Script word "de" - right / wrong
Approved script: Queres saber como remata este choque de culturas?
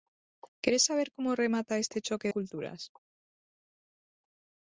wrong